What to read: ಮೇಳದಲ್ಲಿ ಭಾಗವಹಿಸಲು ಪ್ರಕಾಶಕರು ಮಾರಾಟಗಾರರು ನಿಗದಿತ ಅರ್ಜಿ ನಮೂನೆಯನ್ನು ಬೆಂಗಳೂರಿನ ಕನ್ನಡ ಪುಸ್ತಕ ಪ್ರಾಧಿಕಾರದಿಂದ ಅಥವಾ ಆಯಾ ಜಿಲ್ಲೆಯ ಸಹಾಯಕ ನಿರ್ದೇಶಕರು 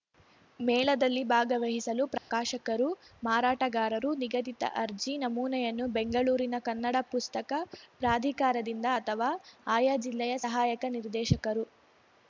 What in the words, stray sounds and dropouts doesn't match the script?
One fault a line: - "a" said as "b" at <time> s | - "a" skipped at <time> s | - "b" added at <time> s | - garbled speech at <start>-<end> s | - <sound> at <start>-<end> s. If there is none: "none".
- dropout at 2.2-2.3 s